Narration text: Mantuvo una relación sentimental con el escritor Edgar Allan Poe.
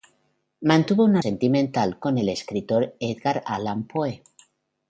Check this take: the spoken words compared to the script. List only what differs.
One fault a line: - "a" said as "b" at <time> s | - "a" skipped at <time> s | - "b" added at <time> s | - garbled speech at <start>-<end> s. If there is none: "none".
- "relación" skipped at 1.2 s